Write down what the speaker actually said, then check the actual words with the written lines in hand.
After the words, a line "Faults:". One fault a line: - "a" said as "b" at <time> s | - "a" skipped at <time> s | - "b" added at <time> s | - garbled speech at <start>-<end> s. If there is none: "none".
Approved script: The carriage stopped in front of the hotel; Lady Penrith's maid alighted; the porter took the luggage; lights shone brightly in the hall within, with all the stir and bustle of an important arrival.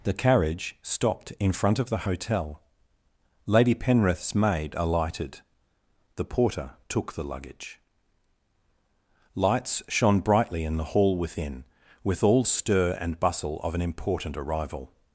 The carriage stopped in front of the hotel; Lady Penrith's maid alighted; the porter took the luggage; lights shone brightly in the hall within, with all stir and bustle of an important arrival.
Faults:
- "the" skipped at 12.4 s